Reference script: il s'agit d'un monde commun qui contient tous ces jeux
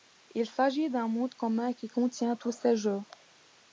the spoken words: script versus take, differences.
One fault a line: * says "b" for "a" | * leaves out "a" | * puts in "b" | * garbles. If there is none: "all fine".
all fine